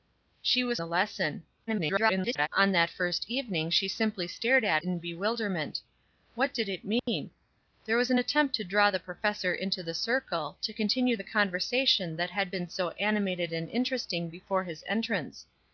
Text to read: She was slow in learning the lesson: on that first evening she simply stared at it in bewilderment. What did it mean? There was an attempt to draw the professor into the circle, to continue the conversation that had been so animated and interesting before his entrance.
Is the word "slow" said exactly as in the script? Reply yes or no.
no